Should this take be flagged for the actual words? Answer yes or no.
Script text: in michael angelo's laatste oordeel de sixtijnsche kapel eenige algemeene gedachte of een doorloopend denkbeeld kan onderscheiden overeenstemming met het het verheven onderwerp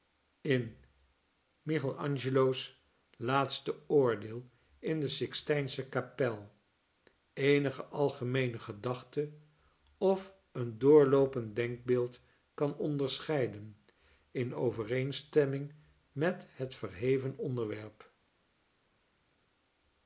yes